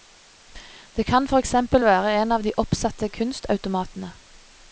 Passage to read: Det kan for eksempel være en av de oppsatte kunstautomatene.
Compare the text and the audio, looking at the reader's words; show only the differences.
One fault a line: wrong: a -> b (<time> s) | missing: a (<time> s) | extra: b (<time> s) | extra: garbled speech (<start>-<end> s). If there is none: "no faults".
no faults